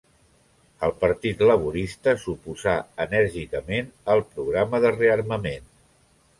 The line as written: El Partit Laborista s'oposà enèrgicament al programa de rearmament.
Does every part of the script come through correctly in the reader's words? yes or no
yes